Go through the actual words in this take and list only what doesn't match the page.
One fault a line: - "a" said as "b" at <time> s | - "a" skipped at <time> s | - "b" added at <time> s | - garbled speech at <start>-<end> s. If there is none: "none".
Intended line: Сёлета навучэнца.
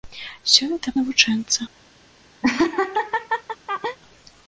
none